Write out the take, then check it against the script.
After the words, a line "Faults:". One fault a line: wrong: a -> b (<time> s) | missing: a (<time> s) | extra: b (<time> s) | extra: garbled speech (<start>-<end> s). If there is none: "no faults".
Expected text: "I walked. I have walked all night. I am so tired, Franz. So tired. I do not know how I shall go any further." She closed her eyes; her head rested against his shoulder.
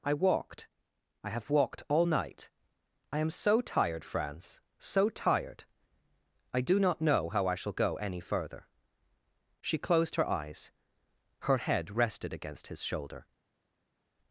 "I walked. I have walked all night. I am so tired, Franz. So tired. I do not know how I shall go any further." She closed her eyes; her head rested against his shoulder.
Faults:
no faults